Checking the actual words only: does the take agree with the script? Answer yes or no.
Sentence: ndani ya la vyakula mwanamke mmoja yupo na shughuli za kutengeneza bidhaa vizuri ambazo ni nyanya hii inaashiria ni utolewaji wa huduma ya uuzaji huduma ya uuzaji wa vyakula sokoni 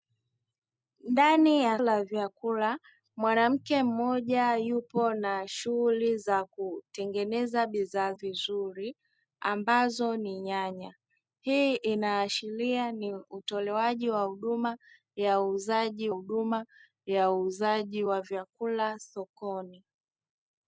yes